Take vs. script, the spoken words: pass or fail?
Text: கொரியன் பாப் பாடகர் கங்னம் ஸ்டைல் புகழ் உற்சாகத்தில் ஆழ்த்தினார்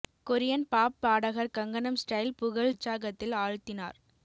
pass